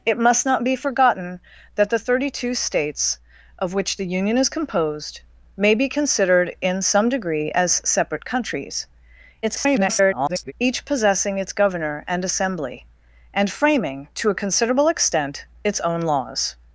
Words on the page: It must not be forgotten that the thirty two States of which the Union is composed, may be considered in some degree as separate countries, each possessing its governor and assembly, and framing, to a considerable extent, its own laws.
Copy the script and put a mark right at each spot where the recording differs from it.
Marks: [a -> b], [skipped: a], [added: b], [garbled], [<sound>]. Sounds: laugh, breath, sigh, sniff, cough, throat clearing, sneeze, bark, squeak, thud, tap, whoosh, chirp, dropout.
It must not be forgotten that the thirty two States of which the Union is composed, may be considered in some degree as separate countries, [garbled] each possessing its governor and assembly, and framing, to a considerable extent, its own laws.